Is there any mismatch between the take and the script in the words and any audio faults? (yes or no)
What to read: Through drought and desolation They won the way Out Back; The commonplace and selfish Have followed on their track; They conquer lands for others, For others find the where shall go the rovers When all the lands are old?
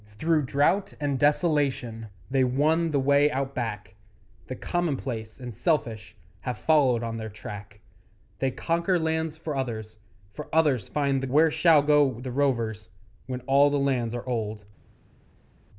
no